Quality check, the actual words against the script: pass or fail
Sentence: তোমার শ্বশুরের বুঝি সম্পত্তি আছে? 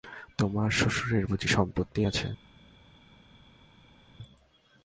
pass